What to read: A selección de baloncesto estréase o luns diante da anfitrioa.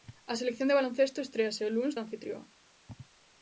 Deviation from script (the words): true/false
true